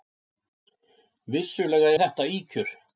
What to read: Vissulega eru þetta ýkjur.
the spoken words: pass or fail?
fail